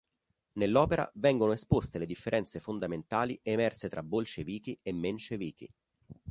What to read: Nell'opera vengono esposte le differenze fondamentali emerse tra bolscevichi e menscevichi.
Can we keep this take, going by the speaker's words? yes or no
yes